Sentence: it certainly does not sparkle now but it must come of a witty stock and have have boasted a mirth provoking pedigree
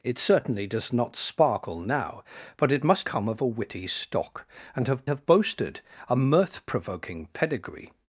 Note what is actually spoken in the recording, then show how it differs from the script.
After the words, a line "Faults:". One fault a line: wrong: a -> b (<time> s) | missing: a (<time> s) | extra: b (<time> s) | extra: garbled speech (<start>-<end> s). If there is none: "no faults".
it certainly does not sparkle now but it must come of a witty stock and have have boasted a mirth provoking pedigree
Faults:
no faults